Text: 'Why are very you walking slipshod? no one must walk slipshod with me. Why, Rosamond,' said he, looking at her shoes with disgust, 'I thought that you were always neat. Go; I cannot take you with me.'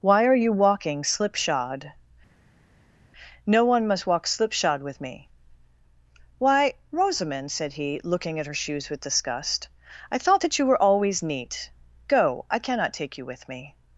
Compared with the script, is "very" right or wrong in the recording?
wrong